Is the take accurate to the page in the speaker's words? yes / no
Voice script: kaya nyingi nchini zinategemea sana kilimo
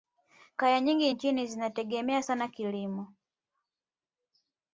yes